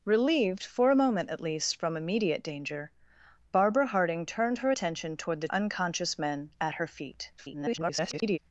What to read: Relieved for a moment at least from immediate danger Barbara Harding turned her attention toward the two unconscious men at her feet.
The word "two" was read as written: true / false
false